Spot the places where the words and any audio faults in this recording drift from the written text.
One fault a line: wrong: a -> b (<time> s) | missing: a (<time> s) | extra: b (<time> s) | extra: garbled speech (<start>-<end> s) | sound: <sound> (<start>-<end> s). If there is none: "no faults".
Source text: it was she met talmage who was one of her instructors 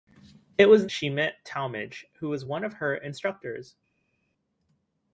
no faults